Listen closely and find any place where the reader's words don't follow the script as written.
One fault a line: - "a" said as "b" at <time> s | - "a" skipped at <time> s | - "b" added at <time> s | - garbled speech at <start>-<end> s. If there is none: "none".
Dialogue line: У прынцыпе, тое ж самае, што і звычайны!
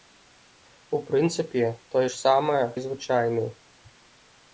- "што" skipped at 2.6 s